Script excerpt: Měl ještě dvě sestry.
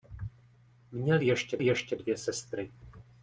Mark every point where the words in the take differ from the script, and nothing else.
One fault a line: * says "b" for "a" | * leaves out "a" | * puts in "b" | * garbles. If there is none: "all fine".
* puts in "ještě"